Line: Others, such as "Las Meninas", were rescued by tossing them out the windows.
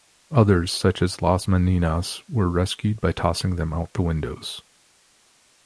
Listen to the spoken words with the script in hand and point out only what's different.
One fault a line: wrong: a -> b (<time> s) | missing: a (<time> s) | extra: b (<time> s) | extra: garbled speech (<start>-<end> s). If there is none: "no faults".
no faults